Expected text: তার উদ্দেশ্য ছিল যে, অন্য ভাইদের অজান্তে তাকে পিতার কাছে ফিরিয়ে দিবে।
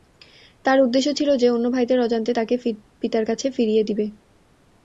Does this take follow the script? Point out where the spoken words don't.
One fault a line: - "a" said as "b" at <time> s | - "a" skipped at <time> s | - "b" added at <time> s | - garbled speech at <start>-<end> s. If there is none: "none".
none